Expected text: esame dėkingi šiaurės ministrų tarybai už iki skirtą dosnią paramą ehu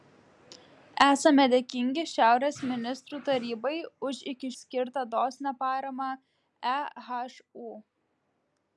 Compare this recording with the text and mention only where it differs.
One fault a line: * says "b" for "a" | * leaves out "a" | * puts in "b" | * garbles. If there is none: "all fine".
all fine